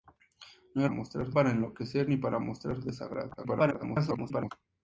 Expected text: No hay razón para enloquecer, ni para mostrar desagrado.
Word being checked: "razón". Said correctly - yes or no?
no